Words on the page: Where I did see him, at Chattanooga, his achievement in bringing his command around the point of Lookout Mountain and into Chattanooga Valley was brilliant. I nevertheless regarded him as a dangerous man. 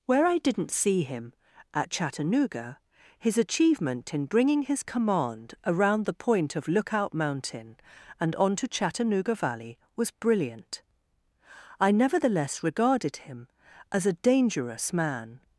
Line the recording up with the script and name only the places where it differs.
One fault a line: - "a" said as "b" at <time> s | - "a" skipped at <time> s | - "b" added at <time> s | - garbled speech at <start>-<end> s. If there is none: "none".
- "did" said as "didn't" at 0.4 s
- "into" said as "onto" at 8.4 s